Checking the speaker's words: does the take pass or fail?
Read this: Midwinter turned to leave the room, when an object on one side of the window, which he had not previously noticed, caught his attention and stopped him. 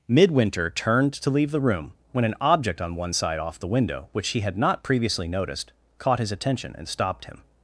fail